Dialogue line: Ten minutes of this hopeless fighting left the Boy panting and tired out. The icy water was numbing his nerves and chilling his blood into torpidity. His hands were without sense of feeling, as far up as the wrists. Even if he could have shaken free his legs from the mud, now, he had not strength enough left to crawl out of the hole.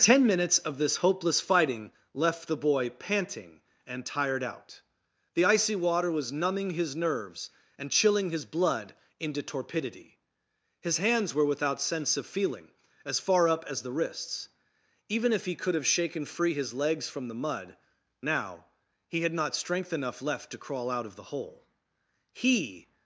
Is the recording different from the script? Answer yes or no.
yes